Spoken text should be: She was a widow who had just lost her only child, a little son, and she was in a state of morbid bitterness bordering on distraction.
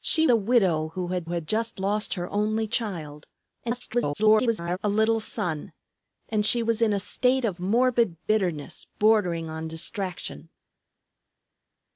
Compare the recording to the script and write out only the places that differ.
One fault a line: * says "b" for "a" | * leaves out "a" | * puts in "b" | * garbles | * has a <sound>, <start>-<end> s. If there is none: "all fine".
* leaves out "was"
* puts in "had"
* garbles